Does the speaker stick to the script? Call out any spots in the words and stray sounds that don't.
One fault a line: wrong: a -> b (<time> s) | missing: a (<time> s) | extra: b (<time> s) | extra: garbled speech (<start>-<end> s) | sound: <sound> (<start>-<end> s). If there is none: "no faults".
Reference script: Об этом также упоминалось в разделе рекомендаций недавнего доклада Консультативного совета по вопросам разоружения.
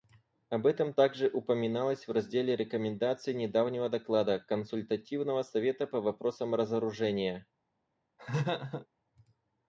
sound: laugh (8.2-8.9 s)